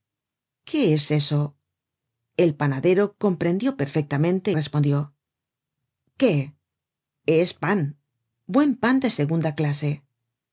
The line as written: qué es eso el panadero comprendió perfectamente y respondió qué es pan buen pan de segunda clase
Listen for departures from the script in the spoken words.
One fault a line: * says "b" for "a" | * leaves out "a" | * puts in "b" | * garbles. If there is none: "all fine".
* leaves out "y"